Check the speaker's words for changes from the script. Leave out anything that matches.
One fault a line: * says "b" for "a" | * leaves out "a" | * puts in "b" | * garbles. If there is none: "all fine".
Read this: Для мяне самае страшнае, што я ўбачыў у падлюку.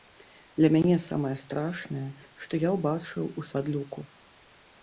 all fine